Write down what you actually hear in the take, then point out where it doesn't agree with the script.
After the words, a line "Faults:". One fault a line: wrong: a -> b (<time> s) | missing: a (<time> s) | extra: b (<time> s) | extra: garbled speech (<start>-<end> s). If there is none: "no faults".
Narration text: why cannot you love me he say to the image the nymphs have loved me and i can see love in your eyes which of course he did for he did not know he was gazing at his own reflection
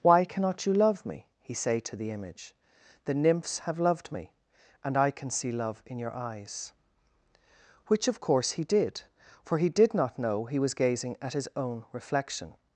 why cannot you love me he say to the image the nymphs have loved me and i can see love in your eyes which of course he did for he did not know he was gazing at his own reflection
Faults:
no faults